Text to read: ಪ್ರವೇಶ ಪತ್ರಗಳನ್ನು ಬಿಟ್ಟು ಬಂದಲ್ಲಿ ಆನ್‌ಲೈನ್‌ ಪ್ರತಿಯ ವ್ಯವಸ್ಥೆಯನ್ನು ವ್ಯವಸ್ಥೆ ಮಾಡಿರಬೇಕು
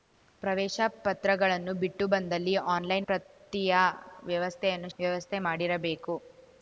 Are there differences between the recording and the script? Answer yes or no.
no